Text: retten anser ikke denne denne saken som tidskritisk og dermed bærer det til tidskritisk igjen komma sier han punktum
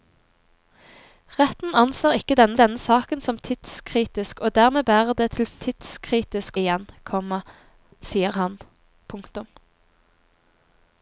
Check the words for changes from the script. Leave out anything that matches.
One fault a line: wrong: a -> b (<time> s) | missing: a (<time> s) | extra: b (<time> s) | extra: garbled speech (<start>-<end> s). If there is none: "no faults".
no faults